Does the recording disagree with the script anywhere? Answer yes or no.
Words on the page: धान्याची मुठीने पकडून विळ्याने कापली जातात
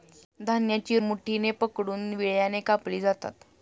no